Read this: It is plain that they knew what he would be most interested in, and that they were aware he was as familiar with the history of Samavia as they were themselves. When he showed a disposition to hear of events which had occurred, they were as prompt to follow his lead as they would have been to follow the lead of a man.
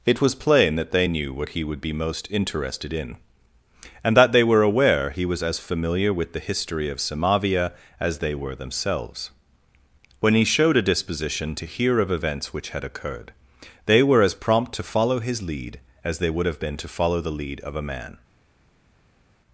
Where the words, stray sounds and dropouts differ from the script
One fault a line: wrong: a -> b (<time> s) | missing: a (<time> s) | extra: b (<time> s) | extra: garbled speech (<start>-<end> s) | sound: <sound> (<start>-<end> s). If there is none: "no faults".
wrong: is -> was (0.2 s)